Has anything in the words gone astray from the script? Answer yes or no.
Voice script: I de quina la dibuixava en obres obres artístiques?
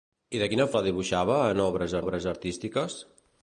no